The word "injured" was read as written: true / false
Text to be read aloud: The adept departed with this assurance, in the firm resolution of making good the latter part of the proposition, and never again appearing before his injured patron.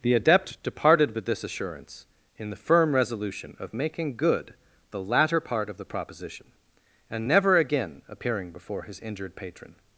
true